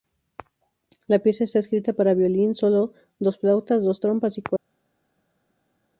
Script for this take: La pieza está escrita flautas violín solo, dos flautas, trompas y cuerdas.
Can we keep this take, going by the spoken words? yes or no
no